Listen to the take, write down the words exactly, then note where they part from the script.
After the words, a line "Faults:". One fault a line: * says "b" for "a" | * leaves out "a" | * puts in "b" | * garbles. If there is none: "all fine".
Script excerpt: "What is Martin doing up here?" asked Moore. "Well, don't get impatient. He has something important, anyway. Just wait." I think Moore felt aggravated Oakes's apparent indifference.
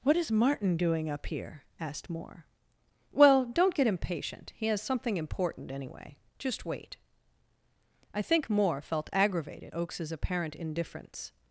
"What is Martin doing up here?" asked Moore. "Well, don't get impatient. He has something important, anyway. Just wait." I think Moore felt aggravated Oakes's apparent indifference.
Faults:
all fine